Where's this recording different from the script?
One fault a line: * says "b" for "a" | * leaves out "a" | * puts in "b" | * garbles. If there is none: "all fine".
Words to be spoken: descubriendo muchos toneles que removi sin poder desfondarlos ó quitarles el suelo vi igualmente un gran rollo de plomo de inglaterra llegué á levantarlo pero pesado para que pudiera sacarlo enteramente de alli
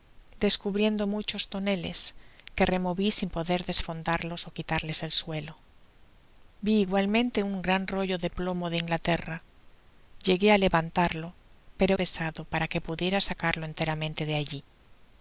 all fine